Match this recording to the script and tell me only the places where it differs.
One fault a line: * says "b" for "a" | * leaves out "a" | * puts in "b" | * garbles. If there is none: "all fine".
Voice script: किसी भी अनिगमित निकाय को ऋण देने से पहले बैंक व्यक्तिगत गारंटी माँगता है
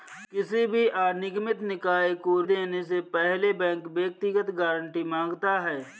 * leaves out "ऋण"